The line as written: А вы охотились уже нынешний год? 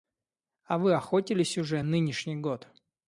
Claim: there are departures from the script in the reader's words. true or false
false